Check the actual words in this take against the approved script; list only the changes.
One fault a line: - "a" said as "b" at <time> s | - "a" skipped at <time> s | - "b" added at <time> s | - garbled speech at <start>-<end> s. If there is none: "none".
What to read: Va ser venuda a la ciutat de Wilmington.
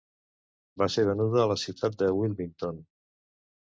none